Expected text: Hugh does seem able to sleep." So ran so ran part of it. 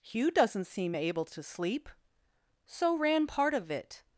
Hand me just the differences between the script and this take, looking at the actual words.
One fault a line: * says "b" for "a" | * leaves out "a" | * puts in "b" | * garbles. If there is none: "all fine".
* says "doesn't" for "does"
* leaves out "so ran"